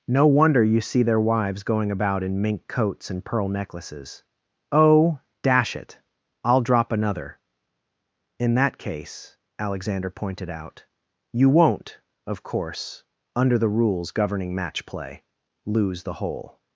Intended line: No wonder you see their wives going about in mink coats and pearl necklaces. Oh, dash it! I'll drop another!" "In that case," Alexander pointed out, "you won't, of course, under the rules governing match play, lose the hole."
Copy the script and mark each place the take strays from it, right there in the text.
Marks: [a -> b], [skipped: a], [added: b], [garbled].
No wonder you see their wives going about in mink coats and pearl necklaces. Oh, dash it! I'll drop another!" "In that case," Alexander pointed out, "you won't, of course, under the rules governing match play, lose the hole."